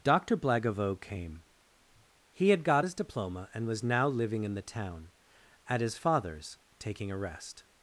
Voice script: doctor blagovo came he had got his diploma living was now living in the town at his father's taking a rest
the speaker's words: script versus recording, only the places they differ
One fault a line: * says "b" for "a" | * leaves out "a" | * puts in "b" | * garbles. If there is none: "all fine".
* says "and" for "living"